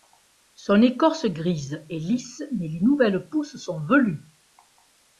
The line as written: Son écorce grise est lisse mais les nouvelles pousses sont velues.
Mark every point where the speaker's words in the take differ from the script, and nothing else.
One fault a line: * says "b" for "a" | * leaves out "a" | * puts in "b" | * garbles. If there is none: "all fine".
all fine